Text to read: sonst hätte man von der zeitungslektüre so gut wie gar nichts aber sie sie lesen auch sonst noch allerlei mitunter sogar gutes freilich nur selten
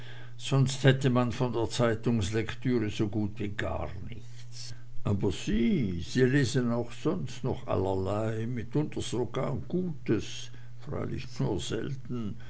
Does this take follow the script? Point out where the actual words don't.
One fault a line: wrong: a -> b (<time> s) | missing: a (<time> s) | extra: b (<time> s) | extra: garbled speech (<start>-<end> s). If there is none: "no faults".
no faults